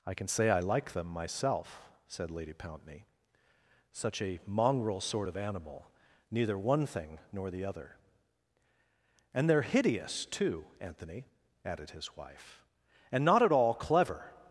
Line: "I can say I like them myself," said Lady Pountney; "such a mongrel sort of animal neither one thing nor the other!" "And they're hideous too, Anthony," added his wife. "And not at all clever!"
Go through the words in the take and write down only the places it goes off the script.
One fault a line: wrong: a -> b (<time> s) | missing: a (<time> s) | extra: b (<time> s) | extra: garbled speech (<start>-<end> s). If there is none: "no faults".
no faults